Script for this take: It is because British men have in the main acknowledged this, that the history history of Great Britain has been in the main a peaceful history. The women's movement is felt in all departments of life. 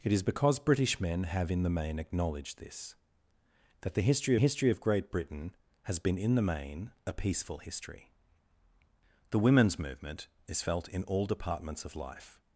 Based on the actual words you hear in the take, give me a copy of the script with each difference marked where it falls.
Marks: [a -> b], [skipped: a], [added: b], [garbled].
It is because British men have in the main acknowledged this, that the history history of Great Britain has been in the main a peaceful history. The women's movement is felt in all departments of life.